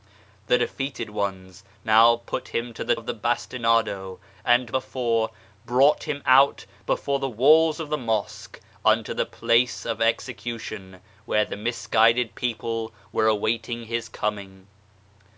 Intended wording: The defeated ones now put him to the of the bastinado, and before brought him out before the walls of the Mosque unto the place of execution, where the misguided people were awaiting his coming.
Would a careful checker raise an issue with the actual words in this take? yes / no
no